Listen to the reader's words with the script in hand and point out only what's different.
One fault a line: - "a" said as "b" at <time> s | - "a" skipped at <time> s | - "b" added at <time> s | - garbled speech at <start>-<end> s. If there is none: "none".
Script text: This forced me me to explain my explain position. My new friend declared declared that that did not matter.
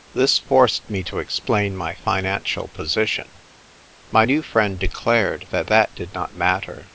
- "me" skipped at 1.0 s
- "explain" said as "financial" at 1.9 s
- "declared" skipped at 5.5 s